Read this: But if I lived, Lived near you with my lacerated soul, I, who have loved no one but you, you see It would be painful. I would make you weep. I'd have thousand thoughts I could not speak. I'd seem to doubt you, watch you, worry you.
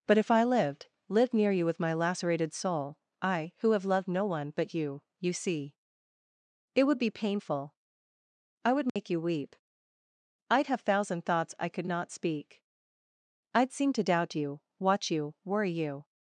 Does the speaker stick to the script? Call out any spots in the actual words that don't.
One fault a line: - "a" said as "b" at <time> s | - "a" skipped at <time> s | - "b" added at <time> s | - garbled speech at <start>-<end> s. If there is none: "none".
none